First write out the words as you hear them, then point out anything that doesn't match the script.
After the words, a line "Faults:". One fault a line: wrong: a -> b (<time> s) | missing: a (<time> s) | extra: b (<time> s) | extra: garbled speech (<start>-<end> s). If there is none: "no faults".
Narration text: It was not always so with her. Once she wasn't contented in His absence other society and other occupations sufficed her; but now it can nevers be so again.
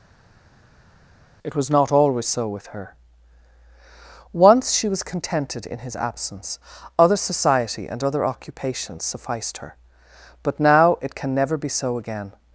It was not always so with her. Once she was contented in His absence other society and other occupations sufficed her; but now it can never be so again.
Faults:
wrong: wasn't -> was (4.9 s)
wrong: nevers -> never (11.3 s)